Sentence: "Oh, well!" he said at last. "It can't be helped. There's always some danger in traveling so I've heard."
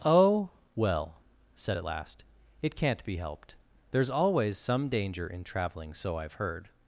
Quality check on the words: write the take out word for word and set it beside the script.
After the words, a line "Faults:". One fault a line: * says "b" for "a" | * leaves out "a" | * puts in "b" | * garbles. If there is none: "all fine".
"Oh, well!" said at last. "It can't be helped. There's always some danger in traveling so I've heard."
Faults:
* leaves out "he"